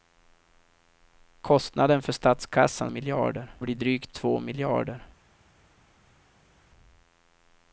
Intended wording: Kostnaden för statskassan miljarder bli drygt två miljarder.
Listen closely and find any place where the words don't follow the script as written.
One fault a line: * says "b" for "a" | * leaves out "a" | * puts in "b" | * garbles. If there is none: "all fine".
all fine